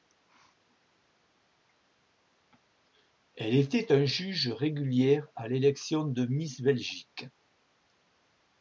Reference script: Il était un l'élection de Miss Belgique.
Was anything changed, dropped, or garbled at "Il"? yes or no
yes